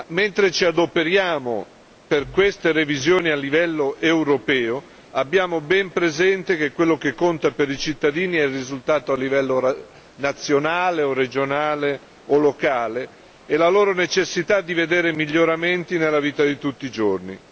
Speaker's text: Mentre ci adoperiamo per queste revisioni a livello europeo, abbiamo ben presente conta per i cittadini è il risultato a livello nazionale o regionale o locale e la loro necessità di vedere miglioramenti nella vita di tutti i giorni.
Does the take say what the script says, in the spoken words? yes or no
no